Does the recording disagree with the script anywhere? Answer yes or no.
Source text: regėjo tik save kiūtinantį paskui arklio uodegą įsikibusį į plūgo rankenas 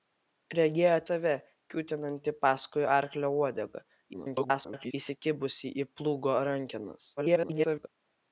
yes